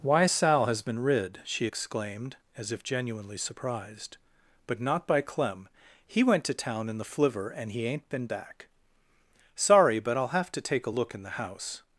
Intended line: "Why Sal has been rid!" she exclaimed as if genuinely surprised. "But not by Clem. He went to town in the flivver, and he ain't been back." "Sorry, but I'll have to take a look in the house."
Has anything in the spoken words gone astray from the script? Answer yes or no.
no